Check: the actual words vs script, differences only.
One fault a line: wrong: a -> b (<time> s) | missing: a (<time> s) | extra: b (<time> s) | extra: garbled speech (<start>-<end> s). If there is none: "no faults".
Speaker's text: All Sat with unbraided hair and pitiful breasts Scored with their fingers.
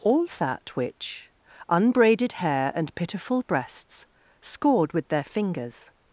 wrong: with -> which (0.8 s)